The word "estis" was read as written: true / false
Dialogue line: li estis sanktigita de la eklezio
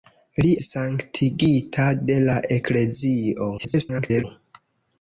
false